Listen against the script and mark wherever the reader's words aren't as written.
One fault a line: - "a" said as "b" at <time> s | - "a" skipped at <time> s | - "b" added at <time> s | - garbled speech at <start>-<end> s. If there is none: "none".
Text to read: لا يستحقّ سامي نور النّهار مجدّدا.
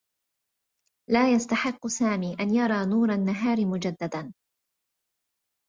- "أن يرى" added at 2.4 s